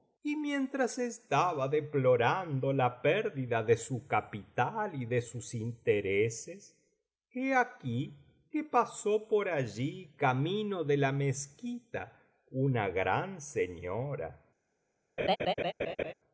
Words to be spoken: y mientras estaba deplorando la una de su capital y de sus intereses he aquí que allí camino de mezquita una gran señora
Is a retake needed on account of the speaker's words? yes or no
yes